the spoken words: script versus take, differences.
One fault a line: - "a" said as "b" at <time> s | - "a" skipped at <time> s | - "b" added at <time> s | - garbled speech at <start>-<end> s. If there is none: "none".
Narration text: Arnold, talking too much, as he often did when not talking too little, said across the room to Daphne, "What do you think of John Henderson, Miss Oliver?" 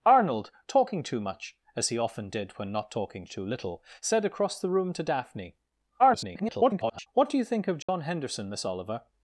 - garbled speech at 6.0-7.1 s